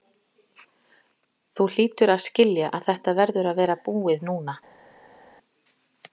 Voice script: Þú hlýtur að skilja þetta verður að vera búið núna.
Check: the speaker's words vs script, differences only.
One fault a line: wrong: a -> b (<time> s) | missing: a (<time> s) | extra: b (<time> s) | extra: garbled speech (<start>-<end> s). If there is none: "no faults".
extra: að (2.8 s)